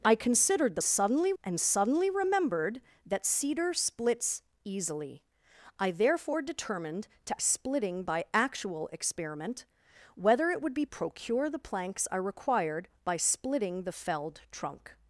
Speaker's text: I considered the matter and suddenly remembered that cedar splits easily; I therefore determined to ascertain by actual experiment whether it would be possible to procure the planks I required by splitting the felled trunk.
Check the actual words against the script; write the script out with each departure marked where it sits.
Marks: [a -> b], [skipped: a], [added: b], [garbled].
I considered the [matter -> suddenly] and suddenly remembered that cedar splits easily; I therefore determined to [ascertain -> splitting] by actual experiment whether it would be [skipped: possible to] procure the planks I required by splitting the felled trunk.